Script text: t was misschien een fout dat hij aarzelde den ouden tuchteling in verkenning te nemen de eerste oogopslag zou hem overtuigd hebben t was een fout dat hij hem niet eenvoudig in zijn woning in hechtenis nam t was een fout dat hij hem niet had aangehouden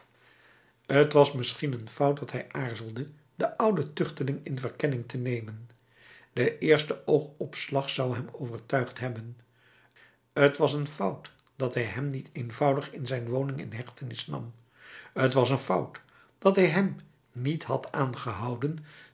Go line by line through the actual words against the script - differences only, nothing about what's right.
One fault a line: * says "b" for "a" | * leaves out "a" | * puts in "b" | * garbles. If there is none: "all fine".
all fine